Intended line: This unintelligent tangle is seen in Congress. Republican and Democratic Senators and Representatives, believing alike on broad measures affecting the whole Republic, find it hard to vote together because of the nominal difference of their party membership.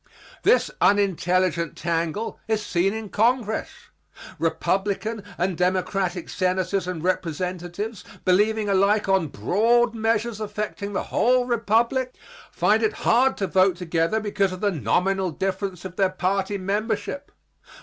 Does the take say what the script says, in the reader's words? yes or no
yes